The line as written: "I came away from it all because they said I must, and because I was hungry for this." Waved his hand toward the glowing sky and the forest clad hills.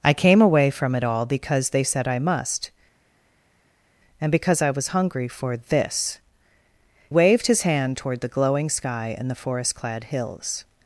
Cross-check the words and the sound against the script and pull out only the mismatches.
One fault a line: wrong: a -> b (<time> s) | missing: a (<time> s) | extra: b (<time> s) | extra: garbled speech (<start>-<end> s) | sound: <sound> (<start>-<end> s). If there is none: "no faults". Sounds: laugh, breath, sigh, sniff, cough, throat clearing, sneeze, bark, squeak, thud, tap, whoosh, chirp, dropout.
no faults